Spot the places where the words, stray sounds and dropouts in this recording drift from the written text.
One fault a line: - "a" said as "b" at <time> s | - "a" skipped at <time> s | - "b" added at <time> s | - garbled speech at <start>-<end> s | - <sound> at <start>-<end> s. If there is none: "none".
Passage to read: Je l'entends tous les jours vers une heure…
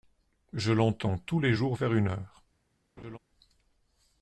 - laugh at 3.0-3.2 s